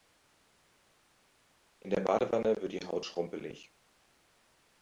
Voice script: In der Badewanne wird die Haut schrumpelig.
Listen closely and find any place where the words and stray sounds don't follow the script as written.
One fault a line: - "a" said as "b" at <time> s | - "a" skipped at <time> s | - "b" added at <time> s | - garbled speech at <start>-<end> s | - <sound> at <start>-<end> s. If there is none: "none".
none